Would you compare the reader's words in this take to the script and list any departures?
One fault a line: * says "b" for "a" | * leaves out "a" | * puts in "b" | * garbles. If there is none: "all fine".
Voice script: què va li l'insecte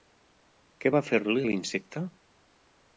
* puts in "fer"